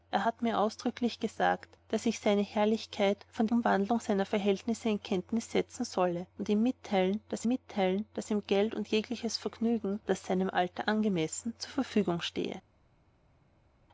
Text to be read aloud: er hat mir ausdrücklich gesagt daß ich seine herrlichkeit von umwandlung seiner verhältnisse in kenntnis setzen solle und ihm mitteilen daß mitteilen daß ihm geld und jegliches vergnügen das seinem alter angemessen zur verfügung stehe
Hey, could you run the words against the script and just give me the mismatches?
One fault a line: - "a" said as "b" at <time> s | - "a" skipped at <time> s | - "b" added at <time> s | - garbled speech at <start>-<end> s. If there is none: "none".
none